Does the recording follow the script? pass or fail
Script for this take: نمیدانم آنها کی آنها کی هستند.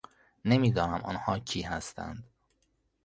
fail